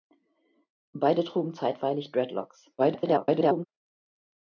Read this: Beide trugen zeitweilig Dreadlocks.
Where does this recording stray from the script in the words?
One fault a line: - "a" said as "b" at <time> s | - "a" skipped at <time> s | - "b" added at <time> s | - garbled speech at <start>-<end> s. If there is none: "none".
- garbled speech at 2.8-3.7 s